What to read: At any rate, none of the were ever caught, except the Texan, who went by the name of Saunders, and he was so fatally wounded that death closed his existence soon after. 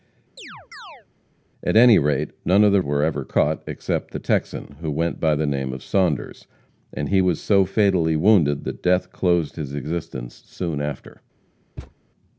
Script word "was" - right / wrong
right